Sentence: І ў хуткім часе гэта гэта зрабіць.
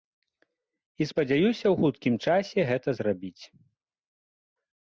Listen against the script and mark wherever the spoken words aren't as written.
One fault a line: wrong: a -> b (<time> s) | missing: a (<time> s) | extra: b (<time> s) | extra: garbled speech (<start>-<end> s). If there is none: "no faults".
extra: спадзяюся (1.1 s)
missing: гэта (2.9 s)